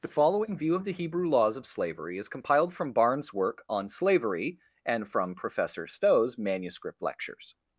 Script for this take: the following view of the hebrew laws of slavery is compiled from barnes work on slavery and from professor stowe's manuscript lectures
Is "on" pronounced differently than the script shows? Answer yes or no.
no